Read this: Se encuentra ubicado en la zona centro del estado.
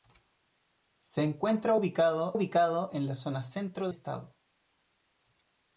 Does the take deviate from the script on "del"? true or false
true